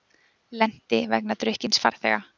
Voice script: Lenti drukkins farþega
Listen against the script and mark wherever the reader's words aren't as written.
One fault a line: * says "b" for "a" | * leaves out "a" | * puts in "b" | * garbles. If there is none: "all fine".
* puts in "vegna"